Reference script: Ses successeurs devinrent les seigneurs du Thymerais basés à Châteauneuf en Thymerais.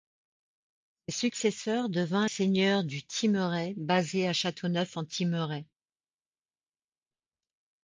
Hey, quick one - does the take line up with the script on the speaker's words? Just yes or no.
no